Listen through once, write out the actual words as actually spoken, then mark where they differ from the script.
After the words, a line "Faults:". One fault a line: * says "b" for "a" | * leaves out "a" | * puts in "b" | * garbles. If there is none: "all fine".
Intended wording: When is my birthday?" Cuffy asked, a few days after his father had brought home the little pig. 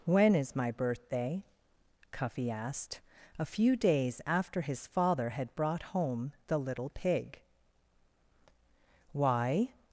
When is my birthday?" Cuffy asked, a few days after his father had brought home the little pig. "Why
Faults:
* puts in "Why"